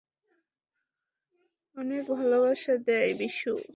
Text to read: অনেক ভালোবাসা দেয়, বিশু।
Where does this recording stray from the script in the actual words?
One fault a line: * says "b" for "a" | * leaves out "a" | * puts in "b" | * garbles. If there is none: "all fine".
all fine